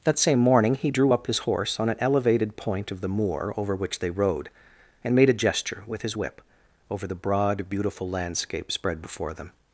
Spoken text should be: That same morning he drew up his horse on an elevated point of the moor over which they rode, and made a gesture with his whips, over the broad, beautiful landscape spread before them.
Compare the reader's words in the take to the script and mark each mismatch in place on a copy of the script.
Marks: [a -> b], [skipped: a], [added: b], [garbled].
That same morning he drew up his horse on an elevated point of the moor over which they rode, and made a gesture with his [whips, -> whip] over the broad, beautiful landscape spread before them.